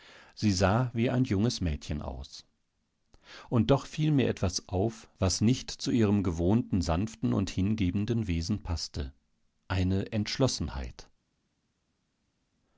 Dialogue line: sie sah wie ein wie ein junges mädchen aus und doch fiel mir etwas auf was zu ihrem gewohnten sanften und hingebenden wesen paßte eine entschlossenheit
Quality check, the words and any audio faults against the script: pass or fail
fail